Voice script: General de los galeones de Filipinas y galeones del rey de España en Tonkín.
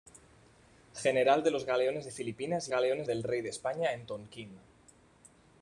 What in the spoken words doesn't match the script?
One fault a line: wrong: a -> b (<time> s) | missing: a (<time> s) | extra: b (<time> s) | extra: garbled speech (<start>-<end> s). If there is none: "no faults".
no faults